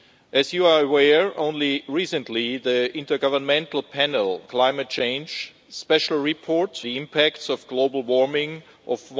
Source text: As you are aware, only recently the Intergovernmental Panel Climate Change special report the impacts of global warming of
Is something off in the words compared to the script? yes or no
no